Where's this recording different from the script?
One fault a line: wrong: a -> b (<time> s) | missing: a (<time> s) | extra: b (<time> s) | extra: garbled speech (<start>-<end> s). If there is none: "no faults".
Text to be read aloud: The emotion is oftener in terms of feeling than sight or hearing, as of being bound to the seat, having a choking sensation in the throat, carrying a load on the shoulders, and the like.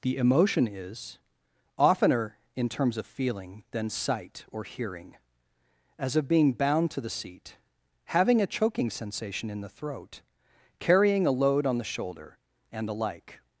wrong: shoulders -> shoulder (11.8 s)